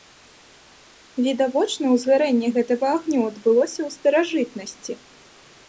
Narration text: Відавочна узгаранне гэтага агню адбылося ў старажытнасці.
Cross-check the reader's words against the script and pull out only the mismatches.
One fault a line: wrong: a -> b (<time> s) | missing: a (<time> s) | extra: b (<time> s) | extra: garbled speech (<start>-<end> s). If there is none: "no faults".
no faults